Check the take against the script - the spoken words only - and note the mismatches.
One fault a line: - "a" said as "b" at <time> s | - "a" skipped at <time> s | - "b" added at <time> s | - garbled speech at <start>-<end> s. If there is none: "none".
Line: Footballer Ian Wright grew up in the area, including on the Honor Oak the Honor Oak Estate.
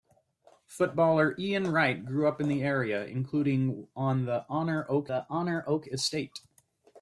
none